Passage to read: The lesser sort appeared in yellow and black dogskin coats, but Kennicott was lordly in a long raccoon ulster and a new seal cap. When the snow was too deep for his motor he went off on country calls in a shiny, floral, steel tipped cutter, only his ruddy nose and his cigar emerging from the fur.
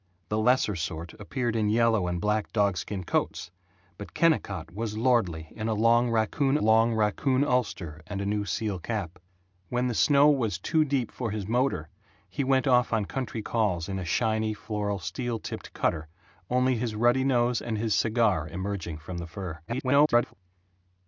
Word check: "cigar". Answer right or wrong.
right